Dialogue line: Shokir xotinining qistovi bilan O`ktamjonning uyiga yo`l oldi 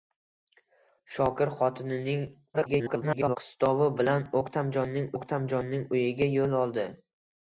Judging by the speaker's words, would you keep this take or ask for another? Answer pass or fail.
fail